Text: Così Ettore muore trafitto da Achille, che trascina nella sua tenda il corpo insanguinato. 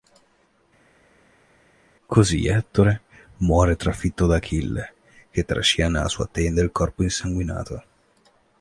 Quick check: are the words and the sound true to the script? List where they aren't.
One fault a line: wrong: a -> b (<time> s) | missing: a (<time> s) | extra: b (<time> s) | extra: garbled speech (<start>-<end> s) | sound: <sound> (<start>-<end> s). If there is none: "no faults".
no faults